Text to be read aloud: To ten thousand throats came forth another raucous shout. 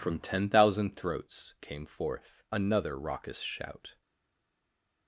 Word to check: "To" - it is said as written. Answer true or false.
false